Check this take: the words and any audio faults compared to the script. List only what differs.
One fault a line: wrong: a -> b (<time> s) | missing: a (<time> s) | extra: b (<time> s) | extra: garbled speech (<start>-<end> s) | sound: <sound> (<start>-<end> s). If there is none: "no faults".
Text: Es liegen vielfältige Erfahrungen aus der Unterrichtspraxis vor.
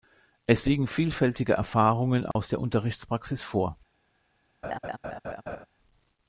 sound: dropout (2.3-2.4 s)
sound: laugh (4.6-5.7 s)